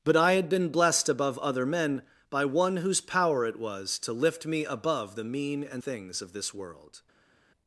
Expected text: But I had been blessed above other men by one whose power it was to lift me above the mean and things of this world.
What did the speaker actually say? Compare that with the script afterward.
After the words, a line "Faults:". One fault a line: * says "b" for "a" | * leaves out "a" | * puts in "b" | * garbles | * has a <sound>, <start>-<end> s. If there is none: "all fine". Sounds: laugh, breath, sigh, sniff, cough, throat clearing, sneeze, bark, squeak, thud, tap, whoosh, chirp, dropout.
But I had been blessed above other men by one whose power it was to lift me above the mean and things of this world.
Faults:
all fine